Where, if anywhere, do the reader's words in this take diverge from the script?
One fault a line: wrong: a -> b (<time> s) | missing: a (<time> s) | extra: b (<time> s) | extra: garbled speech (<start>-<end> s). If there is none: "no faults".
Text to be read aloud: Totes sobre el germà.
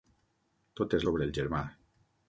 no faults